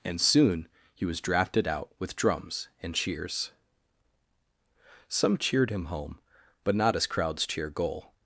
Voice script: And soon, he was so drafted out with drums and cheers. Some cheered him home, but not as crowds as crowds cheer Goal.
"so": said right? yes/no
no